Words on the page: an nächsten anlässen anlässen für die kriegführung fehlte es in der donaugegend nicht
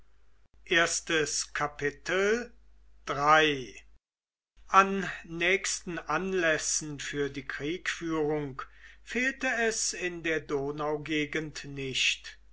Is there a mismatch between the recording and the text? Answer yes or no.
yes